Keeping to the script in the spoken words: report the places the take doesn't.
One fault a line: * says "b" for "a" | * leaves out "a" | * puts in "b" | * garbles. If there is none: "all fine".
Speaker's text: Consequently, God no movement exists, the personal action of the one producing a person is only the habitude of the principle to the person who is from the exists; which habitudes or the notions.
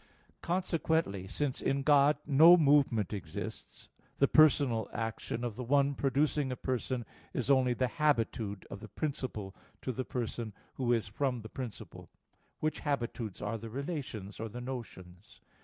* puts in "since in"
* says "principle" for "exists"
* puts in "are the relations"